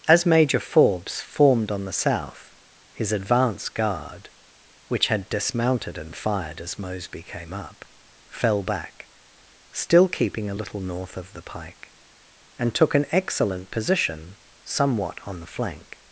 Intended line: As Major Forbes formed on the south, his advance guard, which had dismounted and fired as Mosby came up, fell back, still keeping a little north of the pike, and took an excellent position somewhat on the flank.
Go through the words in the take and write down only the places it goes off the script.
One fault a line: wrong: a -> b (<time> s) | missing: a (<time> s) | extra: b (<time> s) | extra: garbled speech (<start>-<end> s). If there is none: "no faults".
no faults